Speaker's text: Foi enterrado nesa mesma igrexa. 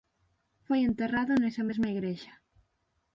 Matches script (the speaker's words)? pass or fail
pass